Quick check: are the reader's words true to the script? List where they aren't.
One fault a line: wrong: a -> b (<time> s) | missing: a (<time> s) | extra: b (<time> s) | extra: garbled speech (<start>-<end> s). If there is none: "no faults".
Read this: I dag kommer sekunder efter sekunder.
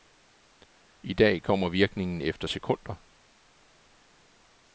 wrong: sekunder -> virkningen (1.7 s)